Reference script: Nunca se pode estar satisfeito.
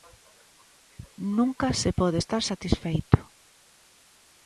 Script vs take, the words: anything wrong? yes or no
no